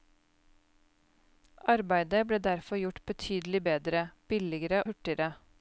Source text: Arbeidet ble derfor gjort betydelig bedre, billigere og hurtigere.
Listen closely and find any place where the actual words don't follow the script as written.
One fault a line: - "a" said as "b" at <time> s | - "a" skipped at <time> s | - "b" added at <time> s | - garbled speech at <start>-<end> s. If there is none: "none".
- "og" skipped at 4.8 s